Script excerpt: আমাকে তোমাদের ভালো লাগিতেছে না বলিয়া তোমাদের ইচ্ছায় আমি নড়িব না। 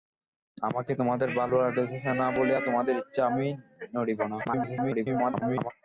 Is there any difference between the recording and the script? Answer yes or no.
yes